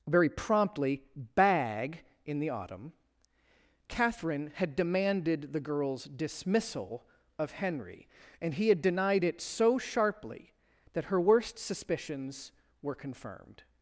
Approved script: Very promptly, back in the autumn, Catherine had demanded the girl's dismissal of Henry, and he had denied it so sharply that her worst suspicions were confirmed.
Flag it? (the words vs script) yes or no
yes